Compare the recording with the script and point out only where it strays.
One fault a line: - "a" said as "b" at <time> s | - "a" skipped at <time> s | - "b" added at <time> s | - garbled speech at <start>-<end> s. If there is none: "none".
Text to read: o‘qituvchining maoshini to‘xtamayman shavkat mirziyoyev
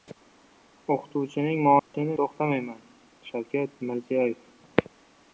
none